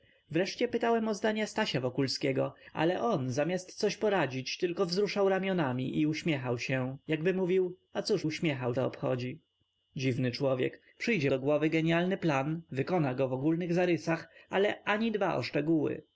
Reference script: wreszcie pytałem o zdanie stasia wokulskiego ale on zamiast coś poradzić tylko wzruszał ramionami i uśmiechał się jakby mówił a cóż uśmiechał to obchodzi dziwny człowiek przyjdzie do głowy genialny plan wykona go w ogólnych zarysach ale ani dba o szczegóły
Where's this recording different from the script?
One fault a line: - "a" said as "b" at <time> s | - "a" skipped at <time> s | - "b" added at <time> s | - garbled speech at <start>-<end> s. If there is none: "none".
none